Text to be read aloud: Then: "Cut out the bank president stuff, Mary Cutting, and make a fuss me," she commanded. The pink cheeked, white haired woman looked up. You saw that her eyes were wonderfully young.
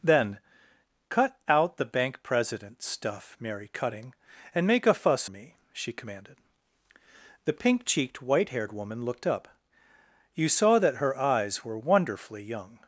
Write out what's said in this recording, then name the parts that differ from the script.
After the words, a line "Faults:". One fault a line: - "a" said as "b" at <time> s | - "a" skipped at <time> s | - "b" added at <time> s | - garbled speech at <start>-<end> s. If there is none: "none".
Then: "Cut out the bank president stuff, Mary Cutting, and make a fuss me," she commanded. The pink cheeked, white haired woman looked up. You saw that her eyes were wonderfully young.
Faults:
none